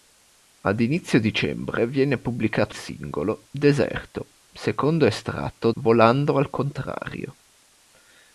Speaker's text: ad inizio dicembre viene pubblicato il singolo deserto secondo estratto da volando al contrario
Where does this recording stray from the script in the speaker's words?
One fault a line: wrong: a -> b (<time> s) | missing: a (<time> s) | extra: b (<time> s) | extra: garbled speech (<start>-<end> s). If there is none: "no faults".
missing: il (2.8 s)
missing: da (5.7 s)